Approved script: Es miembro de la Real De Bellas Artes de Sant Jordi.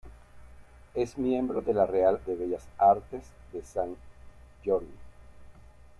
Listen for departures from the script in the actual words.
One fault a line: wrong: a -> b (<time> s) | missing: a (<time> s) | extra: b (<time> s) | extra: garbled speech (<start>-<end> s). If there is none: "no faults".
no faults